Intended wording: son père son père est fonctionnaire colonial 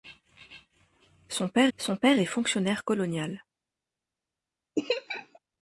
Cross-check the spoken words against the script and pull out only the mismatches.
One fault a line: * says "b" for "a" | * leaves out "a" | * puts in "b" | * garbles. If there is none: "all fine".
all fine